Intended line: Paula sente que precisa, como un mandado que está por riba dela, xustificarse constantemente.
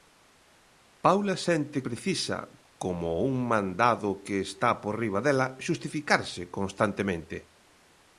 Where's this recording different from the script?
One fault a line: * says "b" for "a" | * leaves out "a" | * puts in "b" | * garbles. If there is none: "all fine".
* leaves out "que"